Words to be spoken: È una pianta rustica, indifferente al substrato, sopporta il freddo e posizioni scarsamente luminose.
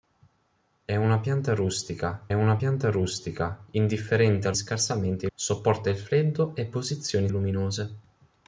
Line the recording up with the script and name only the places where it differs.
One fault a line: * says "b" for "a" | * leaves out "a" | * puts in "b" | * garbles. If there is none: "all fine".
* puts in "una pianta rustica"
* says "scarsamente" for "substrato"
* leaves out "scarsamente"